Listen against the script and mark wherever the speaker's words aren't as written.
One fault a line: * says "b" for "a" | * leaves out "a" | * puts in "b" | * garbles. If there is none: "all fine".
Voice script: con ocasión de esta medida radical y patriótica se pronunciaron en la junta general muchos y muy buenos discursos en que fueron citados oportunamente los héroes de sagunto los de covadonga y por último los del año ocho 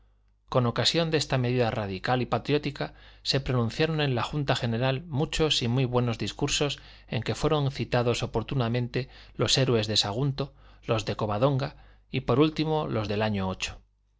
all fine